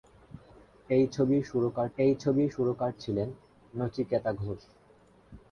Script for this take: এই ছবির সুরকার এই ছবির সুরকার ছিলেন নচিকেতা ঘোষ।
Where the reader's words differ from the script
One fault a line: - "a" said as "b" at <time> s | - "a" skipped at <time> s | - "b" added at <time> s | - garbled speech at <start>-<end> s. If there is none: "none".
none